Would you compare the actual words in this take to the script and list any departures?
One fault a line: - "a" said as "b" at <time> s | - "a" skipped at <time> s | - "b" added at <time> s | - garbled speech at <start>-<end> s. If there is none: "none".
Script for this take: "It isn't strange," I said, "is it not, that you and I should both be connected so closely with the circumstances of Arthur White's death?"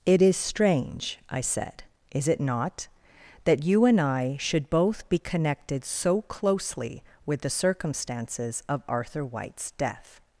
- "isn't" said as "is" at 0.2 s